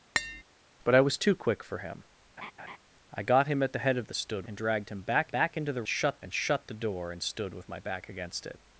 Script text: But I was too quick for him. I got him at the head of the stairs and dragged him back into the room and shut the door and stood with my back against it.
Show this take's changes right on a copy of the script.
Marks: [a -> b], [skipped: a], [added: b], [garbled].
But I was too quick for him. I got him at the head of the [stairs -> stood] and dragged him back [added: back] into the [room -> shut] and shut the door and stood with my back against it.